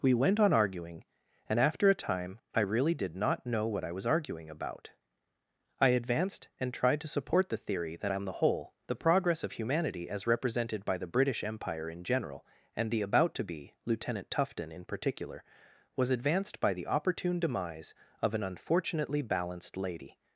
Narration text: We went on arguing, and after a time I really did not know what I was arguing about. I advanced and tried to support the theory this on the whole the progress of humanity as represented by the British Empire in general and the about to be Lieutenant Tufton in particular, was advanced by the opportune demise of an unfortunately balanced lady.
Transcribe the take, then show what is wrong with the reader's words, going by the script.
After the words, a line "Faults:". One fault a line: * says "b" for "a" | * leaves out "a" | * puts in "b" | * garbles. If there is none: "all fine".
We went on arguing, and after a time I really did not know what I was arguing about. I advanced and tried to support the theory that on the whole the progress of humanity as represented by the British Empire in general and the about to be Lieutenant Tufton in particular, was advanced by the opportune demise of an unfortunately balanced lady.
Faults:
* says "that" for "this"